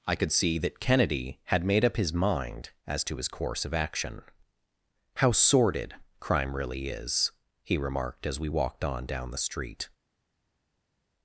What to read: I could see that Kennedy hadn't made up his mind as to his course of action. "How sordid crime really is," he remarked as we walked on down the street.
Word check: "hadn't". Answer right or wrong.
wrong